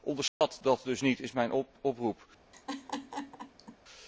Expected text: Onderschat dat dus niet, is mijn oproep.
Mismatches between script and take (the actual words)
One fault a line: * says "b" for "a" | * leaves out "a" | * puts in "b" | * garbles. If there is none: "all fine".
all fine